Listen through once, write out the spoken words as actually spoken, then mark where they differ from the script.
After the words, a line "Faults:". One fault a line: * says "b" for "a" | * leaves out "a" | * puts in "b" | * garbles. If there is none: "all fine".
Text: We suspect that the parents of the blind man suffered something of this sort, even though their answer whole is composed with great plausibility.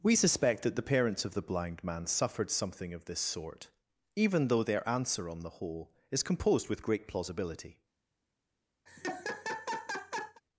We suspect that the parents of the blind man suffered something of this sort, even though their answer on the whole is composed with great plausibility.
Faults:
* puts in "on the"